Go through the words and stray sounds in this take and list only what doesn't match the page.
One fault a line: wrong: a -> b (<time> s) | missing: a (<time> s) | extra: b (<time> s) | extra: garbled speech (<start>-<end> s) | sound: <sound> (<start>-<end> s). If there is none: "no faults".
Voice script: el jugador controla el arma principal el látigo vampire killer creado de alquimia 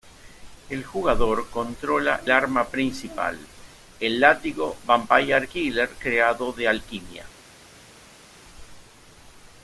missing: el (2.2 s)